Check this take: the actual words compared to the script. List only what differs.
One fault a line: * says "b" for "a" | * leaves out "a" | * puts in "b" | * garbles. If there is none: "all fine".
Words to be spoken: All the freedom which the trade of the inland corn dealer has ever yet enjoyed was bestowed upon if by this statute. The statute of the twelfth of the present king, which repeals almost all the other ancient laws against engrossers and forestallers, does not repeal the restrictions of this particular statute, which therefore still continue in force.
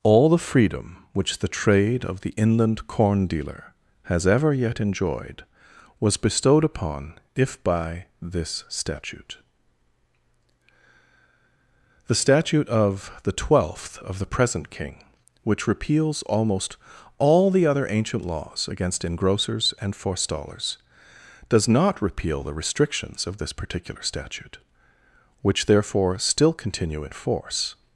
all fine